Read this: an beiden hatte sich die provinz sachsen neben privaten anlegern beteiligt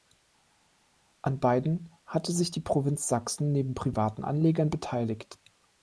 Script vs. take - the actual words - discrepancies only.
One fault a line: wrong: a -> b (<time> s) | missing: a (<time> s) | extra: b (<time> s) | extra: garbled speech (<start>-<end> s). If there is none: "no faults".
no faults